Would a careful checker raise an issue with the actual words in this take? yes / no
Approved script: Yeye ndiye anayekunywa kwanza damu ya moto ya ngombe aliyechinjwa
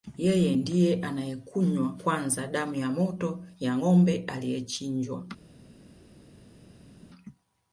no